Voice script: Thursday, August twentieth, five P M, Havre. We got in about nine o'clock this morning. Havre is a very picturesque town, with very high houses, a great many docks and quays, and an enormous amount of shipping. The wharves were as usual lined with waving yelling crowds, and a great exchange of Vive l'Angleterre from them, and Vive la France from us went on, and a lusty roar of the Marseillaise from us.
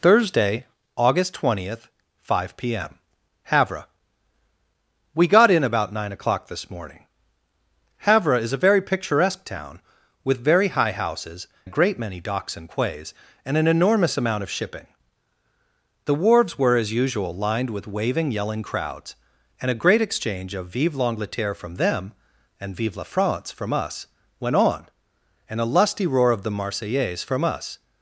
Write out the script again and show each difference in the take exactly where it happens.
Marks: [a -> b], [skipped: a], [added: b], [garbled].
Thursday, August twentieth, five P M, Havre. We got in about nine o'clock this morning. Havre is a very picturesque town, with very high houses, a great many docks and quays, and an enormous amount of shipping. The wharves were as usual lined with waving yelling crowds, and a great exchange of Vive l'Angleterre from them, and Vive la France from us went on, and a lusty roar of the Marseillaise from us.